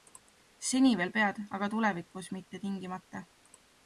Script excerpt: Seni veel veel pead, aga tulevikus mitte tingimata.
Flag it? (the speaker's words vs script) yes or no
yes